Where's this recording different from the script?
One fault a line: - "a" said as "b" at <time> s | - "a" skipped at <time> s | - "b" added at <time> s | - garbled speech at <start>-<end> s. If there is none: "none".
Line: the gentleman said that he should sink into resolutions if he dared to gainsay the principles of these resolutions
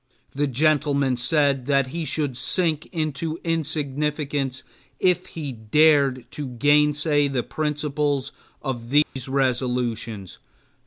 - "resolutions" said as "insignificance" at 3.4 s